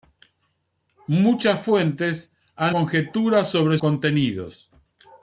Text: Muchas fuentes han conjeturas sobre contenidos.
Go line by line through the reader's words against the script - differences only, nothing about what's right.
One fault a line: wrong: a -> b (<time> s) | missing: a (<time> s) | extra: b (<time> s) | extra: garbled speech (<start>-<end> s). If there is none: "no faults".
no faults